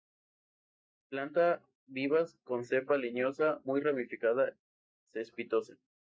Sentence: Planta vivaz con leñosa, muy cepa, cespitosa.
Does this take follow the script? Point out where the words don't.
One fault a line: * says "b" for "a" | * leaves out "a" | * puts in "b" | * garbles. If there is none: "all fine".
* puts in "cepa"
* says "ramificada" for "cepa"